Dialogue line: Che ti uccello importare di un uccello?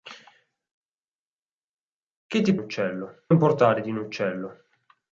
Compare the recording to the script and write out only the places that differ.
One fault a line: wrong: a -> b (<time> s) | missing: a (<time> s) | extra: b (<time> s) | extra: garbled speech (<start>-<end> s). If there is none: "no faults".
no faults